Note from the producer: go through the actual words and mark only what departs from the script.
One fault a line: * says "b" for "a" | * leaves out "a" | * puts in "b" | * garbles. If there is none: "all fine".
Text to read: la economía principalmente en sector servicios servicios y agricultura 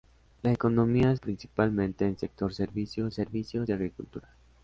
all fine